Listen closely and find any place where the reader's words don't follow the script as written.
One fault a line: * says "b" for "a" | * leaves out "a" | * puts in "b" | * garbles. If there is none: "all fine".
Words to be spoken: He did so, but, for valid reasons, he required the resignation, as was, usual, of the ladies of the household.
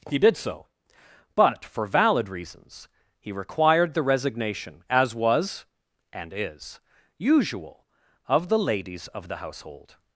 * puts in "and is"